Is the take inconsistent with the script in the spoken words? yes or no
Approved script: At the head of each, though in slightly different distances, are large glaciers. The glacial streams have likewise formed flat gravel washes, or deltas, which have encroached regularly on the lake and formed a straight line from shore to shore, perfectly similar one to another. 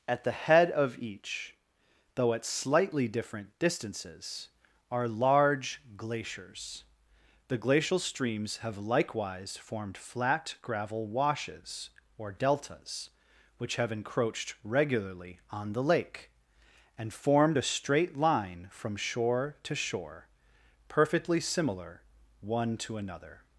yes